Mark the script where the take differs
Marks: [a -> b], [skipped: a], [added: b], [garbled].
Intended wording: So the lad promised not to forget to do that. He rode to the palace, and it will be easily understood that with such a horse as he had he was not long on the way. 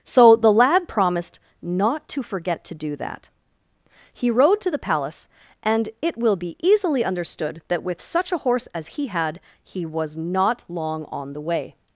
So the lad promised not to forget to do that. He rode to the palace, and it will be easily understood that with such a horse as he had he was not long on the way.